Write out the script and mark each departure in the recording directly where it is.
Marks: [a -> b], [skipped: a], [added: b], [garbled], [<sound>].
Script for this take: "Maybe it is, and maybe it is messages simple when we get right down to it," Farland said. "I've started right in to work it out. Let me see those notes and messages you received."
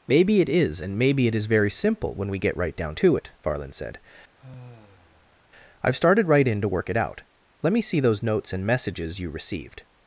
"Maybe it is, and maybe it is [messages -> very] simple when we get right down to it," Farland said. [sigh] "I've started right in to work it out. Let me see those notes and messages you received."